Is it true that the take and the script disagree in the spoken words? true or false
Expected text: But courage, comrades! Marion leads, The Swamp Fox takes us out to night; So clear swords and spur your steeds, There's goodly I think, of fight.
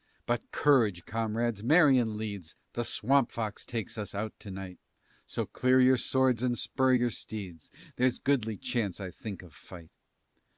true